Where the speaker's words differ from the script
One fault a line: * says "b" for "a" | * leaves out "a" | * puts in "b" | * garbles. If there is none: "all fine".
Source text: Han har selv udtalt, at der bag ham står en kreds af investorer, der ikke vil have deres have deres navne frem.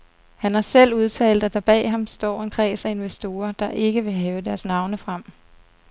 * leaves out "have deres"